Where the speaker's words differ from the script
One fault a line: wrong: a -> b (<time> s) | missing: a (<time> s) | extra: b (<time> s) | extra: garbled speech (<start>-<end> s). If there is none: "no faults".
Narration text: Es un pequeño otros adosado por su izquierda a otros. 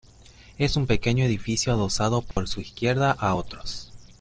wrong: otros -> edificio (1.2 s)